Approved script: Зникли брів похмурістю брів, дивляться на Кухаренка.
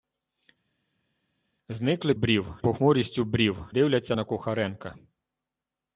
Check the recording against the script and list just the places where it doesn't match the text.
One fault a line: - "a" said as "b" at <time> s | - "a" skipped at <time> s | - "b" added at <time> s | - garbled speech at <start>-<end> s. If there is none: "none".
none